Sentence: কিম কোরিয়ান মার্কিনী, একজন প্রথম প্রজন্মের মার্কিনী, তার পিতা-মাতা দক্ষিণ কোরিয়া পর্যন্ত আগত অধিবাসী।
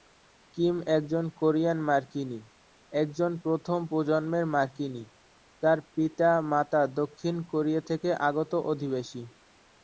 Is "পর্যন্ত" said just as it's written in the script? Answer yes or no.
no